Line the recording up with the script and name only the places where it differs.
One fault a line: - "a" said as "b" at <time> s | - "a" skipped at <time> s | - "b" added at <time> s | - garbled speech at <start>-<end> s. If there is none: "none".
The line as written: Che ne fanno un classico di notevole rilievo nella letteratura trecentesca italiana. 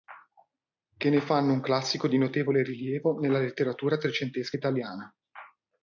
none